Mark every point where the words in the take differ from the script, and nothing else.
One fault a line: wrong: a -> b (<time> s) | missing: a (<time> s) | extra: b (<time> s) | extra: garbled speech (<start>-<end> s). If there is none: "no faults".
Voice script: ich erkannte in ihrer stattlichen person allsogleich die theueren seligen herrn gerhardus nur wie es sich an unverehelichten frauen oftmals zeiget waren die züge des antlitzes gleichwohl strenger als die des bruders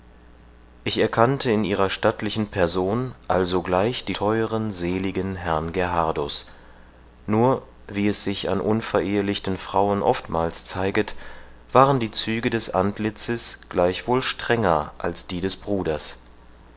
no faults